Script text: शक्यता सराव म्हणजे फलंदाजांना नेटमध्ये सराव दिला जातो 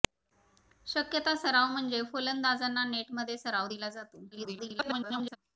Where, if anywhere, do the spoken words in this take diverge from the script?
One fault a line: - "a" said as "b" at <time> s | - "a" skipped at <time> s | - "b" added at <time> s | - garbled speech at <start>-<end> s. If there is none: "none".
- garbled speech at 4.3-5.4 s